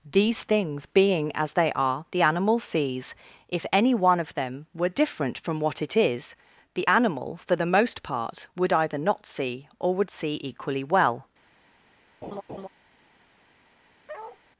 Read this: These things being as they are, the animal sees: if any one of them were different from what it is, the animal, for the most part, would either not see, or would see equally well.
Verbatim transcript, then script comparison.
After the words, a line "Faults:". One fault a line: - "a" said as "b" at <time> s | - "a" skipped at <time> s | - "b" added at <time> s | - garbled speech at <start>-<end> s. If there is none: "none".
These things being as they are, the animal sees: if any one of them were different from what it is, the animal, for the most part, would either not see, or would see equally well.
Faults:
none